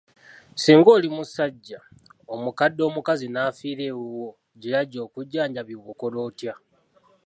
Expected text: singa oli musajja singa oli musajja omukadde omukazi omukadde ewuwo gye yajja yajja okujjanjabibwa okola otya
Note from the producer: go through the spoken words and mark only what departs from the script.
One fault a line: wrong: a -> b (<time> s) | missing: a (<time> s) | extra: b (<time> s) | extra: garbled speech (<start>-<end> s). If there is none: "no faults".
missing: singa oli musajja (1.8 s)
wrong: omukadde -> n'afiira (3.3 s)
missing: yajja (5.0 s)